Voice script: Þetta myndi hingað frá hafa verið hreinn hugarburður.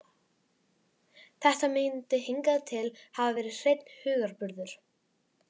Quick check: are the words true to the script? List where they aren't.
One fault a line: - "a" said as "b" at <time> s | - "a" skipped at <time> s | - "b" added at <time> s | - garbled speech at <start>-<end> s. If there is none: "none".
- "frá" said as "til" at 2.7 s